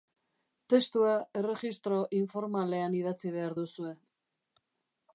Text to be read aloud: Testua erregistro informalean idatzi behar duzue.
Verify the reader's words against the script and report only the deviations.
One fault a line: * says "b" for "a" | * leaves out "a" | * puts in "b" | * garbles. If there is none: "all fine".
all fine